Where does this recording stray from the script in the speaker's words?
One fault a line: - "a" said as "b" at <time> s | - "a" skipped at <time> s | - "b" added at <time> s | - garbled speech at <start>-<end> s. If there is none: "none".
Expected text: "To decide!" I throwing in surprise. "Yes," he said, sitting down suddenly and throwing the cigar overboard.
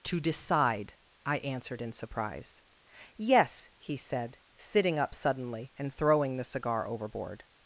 - "throwing" said as "answered" at 1.4 s
- "down" said as "up" at 5.0 s